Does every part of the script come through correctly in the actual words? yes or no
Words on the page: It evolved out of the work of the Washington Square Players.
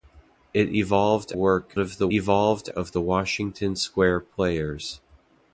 no